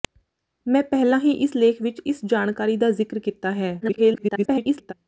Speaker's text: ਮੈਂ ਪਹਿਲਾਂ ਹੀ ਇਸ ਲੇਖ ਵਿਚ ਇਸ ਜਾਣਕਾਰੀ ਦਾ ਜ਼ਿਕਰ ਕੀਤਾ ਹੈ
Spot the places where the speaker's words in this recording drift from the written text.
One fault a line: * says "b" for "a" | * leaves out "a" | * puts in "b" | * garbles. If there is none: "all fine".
* garbles